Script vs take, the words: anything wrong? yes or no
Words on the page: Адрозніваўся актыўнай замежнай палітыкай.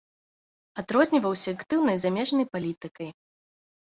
no